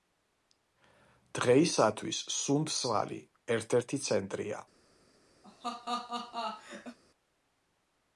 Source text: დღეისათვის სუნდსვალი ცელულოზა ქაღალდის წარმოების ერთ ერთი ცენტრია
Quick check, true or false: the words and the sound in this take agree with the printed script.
false